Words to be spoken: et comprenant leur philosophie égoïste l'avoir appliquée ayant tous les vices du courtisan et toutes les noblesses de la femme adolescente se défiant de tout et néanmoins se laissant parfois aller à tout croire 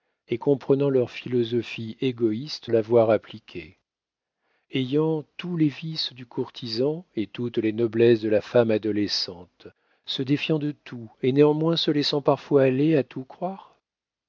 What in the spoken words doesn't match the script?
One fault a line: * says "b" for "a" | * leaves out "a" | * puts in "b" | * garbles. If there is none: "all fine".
all fine